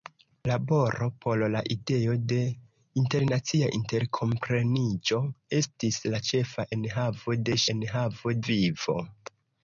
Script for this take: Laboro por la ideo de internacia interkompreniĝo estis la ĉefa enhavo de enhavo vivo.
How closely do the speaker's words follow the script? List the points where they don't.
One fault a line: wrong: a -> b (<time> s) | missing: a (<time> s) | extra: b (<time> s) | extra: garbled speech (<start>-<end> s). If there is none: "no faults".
no faults